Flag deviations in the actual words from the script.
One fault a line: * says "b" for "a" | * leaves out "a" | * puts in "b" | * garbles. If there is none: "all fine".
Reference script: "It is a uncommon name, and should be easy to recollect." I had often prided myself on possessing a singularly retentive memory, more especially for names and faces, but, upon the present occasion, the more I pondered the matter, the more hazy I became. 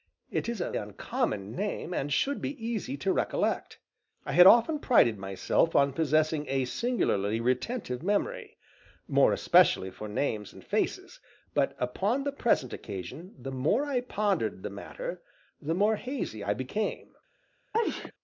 all fine